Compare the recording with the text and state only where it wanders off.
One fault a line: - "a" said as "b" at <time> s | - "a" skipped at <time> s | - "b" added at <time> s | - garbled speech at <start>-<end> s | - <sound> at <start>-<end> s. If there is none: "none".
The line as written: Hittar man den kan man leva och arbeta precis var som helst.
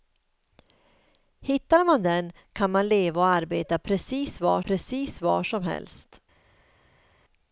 - "precis var" added at 4.6 s